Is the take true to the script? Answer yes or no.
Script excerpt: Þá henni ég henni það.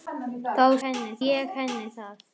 yes